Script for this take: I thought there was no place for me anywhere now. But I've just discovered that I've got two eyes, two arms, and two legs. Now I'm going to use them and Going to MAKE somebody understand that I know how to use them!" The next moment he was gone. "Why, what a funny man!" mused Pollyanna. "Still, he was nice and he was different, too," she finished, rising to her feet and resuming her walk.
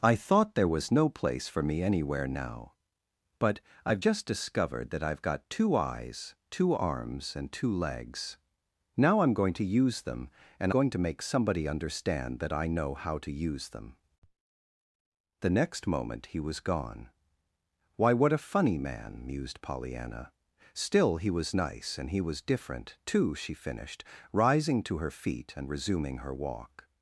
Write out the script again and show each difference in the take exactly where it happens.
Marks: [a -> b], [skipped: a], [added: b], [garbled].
I thought there was no place for me anywhere now. But I've just discovered that I've got two eyes, two arms, and two legs. Now I'm going to use them and Going to MAKE somebody understand that I know how to use them!" The next moment he was gone. "Why, what a funny man!" mused Pollyanna. "Still, he was nice and he was different, too," she finished, rising to her feet and resuming her walk.